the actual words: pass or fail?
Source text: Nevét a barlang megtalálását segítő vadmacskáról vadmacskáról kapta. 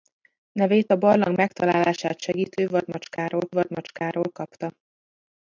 pass